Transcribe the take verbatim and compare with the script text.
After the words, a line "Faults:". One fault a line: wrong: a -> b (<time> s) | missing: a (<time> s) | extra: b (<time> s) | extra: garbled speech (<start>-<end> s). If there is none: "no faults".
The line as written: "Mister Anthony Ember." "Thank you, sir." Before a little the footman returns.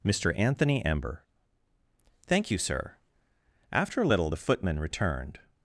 "Mister Anthony Ember." "Thank you, sir." After a little the footman returned.
Faults:
wrong: Before -> After (3.7 s)
wrong: returns -> returned (4.8 s)